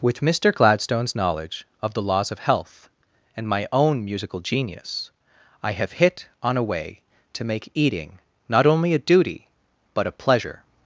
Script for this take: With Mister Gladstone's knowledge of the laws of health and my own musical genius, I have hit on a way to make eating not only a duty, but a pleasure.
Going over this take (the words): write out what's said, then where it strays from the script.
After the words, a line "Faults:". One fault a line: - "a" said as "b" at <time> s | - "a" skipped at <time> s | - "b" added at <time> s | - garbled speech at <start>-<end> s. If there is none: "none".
With Mister Gladstone's knowledge of the laws of health and my own musical genius, I have hit on a way to make eating not only a duty, but a pleasure.
Faults:
none